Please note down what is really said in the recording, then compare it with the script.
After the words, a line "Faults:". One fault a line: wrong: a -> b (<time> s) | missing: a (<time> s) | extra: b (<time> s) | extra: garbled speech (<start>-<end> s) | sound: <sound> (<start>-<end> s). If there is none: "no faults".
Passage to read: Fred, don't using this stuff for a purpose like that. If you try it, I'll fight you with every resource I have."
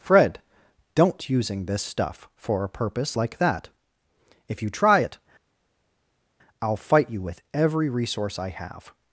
Fred, don't using this stuff for a purpose like that. If you try it, I'll fight you with every resource I have."
Faults:
no faults